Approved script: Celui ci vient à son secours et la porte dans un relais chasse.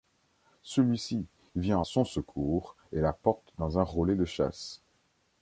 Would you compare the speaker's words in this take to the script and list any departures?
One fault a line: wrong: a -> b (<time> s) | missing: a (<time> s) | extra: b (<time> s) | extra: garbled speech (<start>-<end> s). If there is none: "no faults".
extra: de (4.1 s)